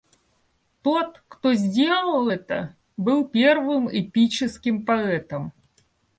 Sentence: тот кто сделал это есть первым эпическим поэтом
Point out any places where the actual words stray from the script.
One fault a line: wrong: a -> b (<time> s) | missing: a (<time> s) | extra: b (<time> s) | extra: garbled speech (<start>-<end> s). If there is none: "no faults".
wrong: есть -> был (3.0 s)